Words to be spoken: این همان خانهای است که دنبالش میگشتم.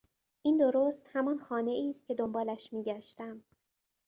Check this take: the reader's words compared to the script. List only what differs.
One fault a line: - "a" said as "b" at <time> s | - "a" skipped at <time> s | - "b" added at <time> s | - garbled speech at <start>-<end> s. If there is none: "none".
- "درست" added at 0.6 s